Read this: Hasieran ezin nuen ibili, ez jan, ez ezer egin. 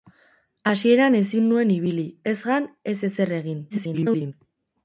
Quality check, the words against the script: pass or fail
fail